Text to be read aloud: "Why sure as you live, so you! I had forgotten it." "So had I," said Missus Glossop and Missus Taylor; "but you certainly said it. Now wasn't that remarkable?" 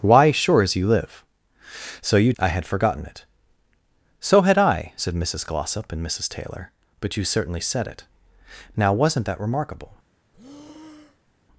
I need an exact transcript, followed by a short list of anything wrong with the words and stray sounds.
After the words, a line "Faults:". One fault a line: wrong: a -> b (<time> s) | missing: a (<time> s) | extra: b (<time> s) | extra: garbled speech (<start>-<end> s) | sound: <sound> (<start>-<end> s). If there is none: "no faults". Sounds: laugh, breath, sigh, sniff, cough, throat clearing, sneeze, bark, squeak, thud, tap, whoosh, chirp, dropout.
"Why sure as you live, so you! I had forgotten it." "So had I," said Missus Glossop and Missus Taylor; "but you certainly said it. Now wasn't that remarkable?"
Faults:
sound: breath (10.3-11.4 s)